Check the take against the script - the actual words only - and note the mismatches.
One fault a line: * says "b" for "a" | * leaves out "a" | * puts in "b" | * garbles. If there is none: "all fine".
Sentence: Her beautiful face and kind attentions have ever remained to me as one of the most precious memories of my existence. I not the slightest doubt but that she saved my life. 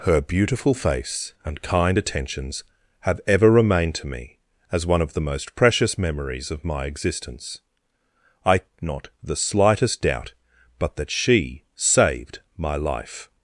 all fine